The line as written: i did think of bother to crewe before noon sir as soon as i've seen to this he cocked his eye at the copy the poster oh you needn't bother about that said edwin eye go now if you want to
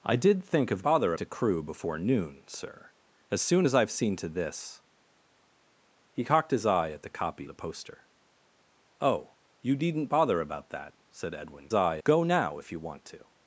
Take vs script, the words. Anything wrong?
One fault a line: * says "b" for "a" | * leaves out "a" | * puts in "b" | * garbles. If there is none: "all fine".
all fine